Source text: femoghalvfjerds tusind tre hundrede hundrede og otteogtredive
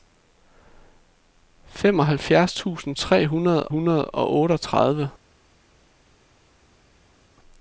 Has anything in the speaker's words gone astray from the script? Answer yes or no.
no